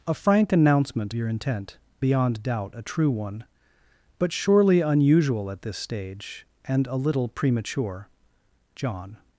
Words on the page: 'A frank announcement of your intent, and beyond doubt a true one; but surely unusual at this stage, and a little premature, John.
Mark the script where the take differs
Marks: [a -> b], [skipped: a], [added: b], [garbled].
'A frank announcement [skipped: of] your intent, [skipped: and] beyond doubt a true one; but surely unusual at this stage, and a little premature, John.